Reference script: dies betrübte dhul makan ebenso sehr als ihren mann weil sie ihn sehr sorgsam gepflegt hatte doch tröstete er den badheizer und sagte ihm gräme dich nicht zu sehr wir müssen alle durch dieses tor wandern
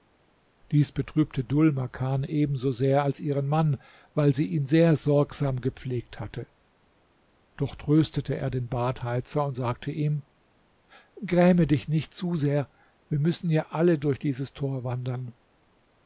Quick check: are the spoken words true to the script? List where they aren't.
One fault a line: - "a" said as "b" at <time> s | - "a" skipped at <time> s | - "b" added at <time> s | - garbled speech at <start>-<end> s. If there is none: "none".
- "ja" added at 13.5 s